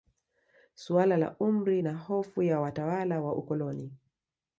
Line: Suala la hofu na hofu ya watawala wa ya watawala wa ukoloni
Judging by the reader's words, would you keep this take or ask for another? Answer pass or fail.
fail